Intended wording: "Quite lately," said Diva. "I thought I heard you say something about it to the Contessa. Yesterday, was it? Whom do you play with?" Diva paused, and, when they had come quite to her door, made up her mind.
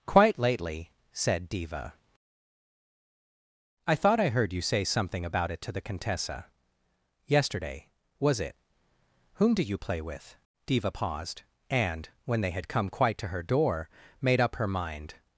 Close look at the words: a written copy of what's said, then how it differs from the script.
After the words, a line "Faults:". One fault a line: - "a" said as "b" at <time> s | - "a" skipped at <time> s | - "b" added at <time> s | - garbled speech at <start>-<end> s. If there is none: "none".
"Quite lately," said Diva. "I thought I heard you say something about it to the Contessa. Yesterday, was it? Whom do you play with?" Diva paused, and, when they had come quite to her door, made up her mind.
Faults:
none